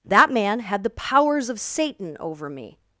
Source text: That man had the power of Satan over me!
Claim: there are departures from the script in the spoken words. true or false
true